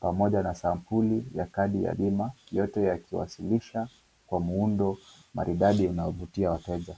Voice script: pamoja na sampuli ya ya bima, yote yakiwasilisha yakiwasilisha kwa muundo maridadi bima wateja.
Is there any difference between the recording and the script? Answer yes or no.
yes